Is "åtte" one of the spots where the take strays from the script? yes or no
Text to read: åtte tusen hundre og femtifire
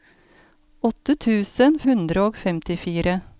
no